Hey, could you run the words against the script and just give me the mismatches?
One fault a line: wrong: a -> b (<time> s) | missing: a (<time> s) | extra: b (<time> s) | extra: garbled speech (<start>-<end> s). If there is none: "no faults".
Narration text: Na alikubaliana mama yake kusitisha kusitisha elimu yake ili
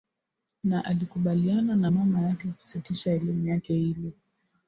extra: na (1.8 s)
missing: kusitisha (3.1 s)